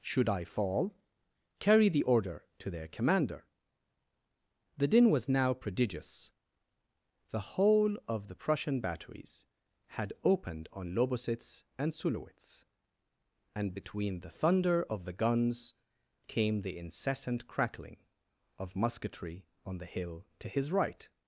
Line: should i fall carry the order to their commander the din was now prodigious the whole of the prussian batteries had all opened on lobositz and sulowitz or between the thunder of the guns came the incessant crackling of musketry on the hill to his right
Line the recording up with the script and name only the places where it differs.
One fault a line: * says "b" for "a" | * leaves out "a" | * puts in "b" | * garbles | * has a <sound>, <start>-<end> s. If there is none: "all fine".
* leaves out "all"
* says "and" for "or"